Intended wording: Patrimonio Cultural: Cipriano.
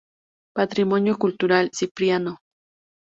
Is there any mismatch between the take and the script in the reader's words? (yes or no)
no